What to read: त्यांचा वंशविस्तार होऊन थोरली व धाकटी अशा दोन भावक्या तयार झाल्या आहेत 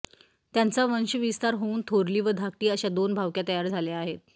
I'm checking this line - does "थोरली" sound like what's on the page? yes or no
yes